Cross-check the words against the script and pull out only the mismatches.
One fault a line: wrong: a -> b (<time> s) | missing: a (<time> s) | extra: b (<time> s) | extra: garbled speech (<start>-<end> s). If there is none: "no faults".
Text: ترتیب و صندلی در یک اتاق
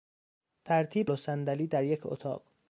no faults